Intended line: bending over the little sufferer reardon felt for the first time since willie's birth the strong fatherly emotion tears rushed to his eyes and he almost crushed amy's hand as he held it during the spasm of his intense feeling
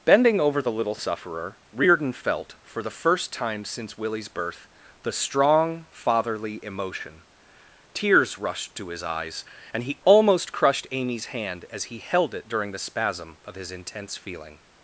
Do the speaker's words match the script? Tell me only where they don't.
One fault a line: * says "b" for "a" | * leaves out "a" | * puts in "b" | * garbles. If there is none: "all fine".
all fine